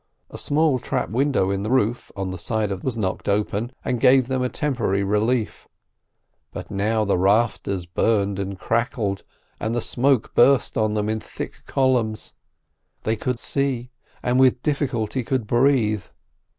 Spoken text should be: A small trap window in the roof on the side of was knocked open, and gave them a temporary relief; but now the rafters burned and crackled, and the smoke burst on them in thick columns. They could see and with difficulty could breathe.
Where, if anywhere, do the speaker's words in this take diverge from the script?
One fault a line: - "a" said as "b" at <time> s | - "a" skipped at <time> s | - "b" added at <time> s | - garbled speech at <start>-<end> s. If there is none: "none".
none